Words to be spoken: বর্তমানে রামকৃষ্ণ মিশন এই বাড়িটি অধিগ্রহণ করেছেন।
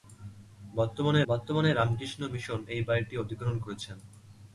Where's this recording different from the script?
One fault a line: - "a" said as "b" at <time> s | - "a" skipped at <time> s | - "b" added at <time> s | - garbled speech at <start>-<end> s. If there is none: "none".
- "বর্তমানে" added at 1.3 s